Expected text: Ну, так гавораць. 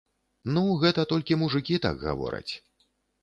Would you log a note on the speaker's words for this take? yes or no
yes